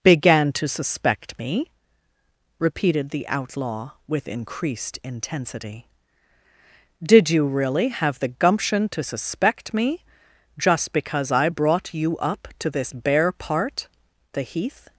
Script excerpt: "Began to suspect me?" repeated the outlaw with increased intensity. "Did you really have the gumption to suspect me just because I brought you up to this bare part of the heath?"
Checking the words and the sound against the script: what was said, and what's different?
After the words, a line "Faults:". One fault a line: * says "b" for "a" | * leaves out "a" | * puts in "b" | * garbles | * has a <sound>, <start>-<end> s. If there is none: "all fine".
"Began to suspect me?" repeated the outlaw with increased intensity. "Did you really have the gumption to suspect me just because I brought you up to this bare part the heath?"
Faults:
* leaves out "of"